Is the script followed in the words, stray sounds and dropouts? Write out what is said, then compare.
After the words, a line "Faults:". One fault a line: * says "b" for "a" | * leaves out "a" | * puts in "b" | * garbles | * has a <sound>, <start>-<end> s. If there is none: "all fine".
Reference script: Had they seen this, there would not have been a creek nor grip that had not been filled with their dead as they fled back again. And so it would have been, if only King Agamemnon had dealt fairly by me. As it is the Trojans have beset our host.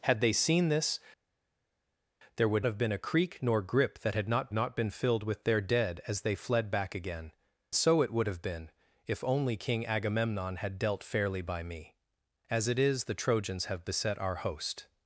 Had they seen this, there would have been a creek nor grip that had not not been filled with their dead as they fled back again. So it would have been, if only King Agamemnon had dealt fairly by me. As it is the Trojans have beset our host.
Faults:
* leaves out "not"
* puts in "not"
* leaves out "And"